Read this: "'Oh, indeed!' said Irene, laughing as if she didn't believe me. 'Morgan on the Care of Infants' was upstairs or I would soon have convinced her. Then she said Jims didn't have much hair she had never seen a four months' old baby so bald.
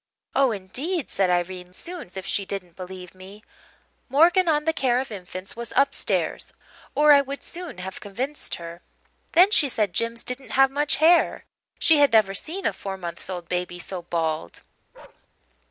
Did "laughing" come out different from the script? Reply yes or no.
yes